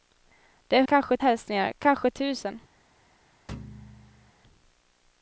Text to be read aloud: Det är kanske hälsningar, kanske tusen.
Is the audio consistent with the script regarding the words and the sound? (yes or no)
no